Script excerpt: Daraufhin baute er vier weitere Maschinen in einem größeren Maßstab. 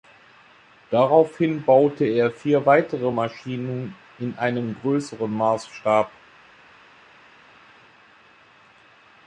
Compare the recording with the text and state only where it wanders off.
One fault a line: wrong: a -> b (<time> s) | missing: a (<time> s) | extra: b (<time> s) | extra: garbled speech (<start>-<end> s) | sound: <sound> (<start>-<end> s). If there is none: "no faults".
no faults